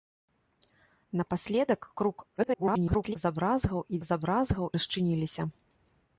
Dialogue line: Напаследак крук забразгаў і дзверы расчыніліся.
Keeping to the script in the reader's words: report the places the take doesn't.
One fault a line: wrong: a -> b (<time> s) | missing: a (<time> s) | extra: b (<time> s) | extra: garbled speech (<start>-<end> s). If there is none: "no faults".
extra: garbled speech (2.4-3.2 s)
wrong: дзверы -> забразгаў (4.1 s)